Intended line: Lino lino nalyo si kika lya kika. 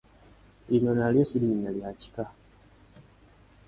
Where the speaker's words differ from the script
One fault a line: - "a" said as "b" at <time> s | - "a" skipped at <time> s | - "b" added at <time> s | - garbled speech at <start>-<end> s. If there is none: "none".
- "lino" skipped at 0.9 s
- "kika" said as "linnya" at 1.4 s